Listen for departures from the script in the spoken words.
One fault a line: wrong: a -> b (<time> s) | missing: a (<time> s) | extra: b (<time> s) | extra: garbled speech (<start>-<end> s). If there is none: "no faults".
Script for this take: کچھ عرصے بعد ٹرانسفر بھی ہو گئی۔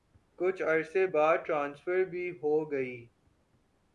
no faults